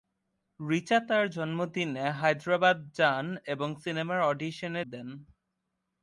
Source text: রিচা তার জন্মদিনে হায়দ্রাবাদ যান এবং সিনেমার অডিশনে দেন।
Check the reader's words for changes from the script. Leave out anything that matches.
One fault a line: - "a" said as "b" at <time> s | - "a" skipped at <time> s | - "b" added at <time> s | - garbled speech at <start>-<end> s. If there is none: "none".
none